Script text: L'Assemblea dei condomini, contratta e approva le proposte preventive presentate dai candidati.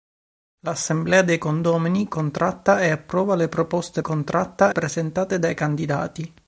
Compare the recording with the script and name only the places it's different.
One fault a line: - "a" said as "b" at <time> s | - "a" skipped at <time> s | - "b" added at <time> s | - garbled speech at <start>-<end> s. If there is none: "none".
- "preventive" said as "contratta" at 4.0 s